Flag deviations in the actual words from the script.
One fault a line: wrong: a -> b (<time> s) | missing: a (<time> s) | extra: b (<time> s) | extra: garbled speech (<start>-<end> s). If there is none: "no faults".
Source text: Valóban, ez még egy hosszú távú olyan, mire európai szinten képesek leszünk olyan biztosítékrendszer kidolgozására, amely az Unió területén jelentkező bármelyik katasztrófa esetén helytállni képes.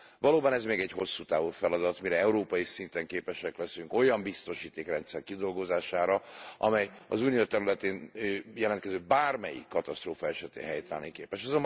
wrong: olyan -> feladat (1.5 s)